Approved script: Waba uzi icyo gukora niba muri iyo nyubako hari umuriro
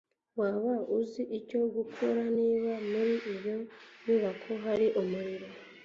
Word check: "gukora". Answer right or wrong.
right